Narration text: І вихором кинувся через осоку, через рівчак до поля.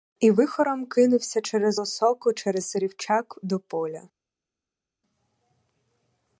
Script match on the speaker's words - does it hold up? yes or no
yes